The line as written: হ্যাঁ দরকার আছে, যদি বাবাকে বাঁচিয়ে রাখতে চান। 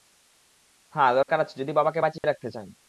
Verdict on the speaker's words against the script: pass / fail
pass